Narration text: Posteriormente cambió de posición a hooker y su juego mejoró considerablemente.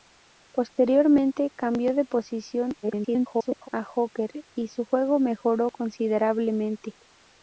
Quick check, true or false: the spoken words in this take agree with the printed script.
false